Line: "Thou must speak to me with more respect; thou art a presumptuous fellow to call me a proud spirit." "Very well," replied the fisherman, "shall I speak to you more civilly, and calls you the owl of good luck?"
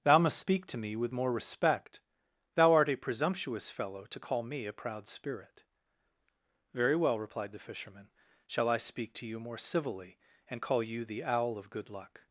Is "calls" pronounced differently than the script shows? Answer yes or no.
yes